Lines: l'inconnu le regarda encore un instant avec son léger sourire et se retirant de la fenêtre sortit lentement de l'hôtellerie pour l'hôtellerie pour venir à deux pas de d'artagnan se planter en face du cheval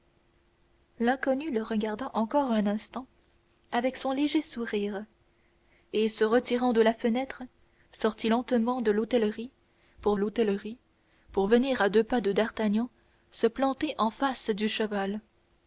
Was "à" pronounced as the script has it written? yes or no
yes